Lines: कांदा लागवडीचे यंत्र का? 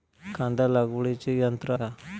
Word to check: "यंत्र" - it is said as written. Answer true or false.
true